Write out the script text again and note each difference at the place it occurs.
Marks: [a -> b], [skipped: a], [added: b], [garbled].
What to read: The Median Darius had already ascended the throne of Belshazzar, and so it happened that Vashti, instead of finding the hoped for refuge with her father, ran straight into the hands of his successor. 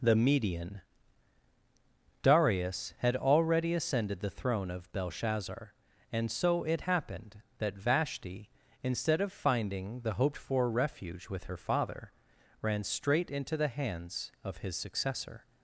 The Median Darius had already ascended the throne of Belshazzar, and so it happened that Vashti, instead of finding the hoped for refuge with her father, ran straight into the hands of his successor.